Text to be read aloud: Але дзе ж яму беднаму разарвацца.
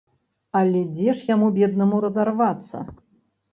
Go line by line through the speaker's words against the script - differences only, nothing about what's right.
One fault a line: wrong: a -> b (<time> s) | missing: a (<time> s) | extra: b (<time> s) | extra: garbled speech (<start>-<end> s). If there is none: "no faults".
no faults